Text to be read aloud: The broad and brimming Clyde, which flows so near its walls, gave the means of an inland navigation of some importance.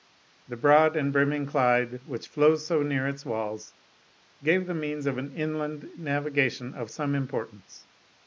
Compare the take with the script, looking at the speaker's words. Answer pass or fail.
pass